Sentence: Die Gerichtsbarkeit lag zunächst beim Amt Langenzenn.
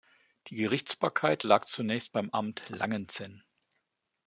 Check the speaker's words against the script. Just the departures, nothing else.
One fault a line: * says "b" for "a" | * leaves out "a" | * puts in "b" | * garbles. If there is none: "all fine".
all fine